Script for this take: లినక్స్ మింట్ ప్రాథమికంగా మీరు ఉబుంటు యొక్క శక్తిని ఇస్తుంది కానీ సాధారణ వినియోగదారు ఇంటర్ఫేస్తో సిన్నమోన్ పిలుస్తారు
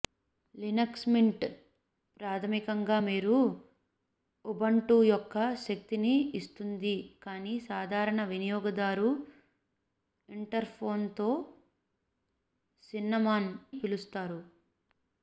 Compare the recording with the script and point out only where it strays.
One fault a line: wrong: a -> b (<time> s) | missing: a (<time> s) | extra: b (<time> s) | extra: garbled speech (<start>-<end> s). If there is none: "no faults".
no faults